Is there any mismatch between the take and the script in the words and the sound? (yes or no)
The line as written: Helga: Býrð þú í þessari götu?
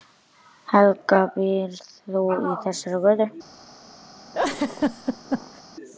yes